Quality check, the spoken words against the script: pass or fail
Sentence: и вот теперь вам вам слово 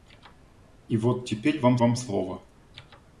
pass